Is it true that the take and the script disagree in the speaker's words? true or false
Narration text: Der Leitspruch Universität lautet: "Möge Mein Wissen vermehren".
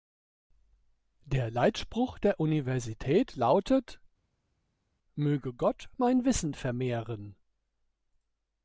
true